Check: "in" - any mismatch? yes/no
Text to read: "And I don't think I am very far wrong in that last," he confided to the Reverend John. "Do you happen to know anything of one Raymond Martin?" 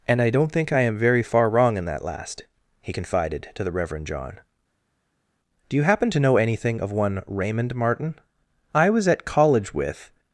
no